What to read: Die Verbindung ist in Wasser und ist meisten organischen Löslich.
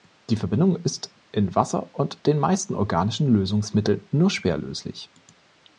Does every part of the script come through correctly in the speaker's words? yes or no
no